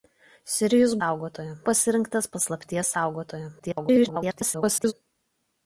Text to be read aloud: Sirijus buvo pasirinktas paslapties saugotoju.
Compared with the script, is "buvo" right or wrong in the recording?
wrong